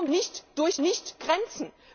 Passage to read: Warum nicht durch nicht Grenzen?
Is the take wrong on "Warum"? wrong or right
right